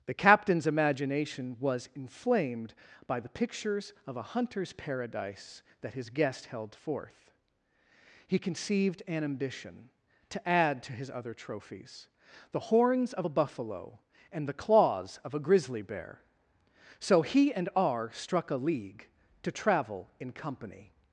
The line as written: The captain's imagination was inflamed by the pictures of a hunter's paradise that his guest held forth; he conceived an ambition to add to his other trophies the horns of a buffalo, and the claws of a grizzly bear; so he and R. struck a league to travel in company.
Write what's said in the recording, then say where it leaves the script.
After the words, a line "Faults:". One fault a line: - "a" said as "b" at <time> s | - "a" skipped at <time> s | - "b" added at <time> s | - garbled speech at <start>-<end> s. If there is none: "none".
The captain's imagination was inflamed by the pictures of a hunter's paradise that his guest held forth; he conceived an ambition to add to his other trophies the horns of a buffalo, and the claws of a grizzly bear; so he and R. struck a league to travel in company.
Faults:
none